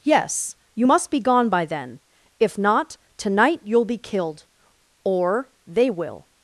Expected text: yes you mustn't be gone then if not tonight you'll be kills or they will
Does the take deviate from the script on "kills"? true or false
true